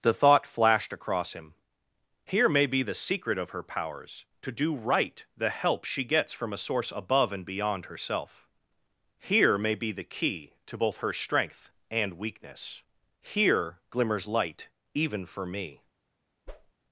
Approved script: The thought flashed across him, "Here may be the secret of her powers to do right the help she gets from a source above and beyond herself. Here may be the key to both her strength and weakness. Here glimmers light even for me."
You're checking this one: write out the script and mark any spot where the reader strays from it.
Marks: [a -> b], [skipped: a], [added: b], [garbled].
The thought flashed across him, "Here may be the secret of her powers to do right the help she gets from a source above and beyond herself. Here may be the key to both her strength and weakness. Here glimmers light even for me."